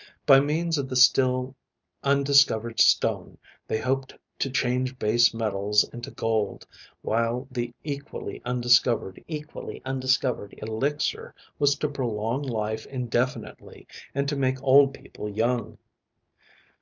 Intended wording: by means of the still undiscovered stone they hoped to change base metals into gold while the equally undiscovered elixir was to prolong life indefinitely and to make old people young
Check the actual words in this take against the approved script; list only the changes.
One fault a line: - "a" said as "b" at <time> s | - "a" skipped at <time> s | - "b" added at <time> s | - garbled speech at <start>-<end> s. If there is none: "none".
- "equally undiscovered" added at 9.3 s